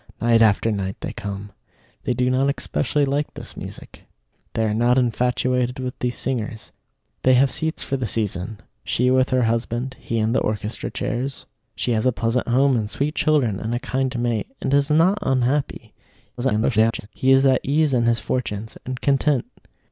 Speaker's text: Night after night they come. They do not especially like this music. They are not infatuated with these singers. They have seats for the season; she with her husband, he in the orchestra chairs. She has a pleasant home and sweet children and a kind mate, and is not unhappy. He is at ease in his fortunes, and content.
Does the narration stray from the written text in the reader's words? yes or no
yes